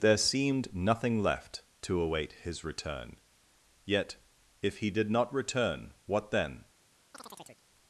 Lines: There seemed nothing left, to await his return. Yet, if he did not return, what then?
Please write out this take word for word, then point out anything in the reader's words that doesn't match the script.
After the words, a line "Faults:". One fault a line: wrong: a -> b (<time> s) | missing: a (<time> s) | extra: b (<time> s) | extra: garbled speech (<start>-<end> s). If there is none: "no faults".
There seemed nothing left, to await his return. Yet, if he did not return, what then?
Faults:
no faults